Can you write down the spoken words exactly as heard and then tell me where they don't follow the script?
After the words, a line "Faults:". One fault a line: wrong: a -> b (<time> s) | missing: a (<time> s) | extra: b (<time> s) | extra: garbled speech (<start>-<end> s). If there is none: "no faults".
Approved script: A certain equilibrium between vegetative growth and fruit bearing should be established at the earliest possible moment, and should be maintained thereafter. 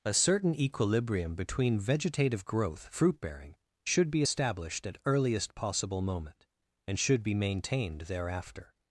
A certain equilibrium between vegetative growth fruit bearing should be established at earliest possible moment, and should be maintained thereafter.
Faults:
missing: and (2.9 s)
missing: the (5.0 s)